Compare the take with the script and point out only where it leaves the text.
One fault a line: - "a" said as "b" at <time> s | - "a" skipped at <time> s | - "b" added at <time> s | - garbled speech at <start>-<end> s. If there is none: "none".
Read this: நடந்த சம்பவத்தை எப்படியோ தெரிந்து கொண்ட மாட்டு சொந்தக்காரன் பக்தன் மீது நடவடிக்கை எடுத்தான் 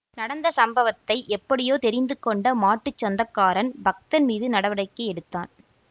none